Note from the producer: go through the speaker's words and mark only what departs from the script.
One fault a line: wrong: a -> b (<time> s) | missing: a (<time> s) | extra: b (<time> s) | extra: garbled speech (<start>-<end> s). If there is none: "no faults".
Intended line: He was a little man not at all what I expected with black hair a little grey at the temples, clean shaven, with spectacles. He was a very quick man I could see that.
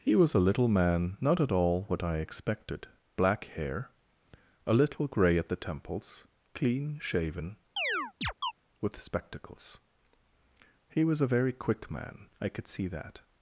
missing: with (2.9 s)